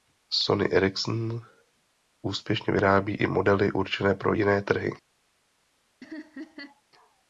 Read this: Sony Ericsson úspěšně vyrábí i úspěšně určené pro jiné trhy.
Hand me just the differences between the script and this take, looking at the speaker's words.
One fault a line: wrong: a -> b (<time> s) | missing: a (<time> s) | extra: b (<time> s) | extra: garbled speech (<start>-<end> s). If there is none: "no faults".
wrong: úspěšně -> modely (3.3 s)